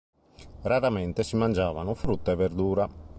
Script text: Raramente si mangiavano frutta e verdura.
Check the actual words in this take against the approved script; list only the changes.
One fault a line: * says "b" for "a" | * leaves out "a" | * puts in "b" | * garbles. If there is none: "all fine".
all fine